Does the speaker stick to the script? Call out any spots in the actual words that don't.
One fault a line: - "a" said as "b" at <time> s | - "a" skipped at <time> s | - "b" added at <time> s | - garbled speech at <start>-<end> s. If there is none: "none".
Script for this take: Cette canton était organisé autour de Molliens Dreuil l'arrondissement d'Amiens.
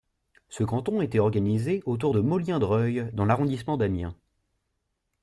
- "Cette" said as "Ce" at 0.5 s
- "dans" added at 3.1 s